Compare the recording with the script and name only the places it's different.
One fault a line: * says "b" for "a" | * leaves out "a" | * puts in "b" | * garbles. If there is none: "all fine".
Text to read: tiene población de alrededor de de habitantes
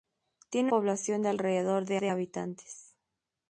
all fine